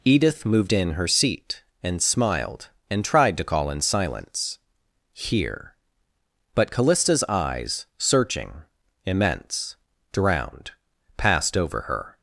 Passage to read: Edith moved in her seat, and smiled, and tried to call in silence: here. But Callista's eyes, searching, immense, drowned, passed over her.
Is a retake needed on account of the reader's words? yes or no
no